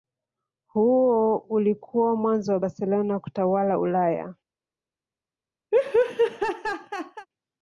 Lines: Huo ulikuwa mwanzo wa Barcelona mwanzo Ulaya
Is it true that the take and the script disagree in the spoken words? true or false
true